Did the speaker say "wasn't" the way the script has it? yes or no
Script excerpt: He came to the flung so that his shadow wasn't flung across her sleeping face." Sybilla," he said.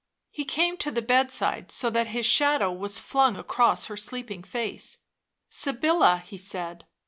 no